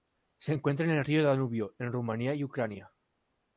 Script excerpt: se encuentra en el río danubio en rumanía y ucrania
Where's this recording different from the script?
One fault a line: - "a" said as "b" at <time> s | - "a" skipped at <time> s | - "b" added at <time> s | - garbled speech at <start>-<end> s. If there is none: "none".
none